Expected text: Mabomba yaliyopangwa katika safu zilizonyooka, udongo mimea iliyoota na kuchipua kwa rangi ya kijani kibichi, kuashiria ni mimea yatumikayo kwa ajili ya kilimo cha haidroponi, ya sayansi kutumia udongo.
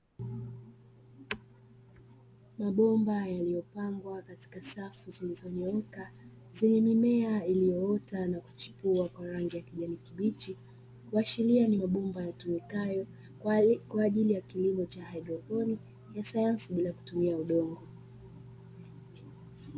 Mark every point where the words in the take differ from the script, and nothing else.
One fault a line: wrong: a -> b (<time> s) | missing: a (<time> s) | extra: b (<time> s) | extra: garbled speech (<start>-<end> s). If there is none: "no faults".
wrong: udongo -> zenye (6.5 s)
wrong: mimea -> mabomba (11.7 s)
extra: bila (16.7 s)